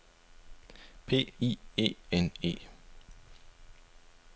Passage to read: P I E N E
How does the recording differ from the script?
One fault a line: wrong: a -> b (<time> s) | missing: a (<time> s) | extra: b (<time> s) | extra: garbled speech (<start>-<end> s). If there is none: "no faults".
no faults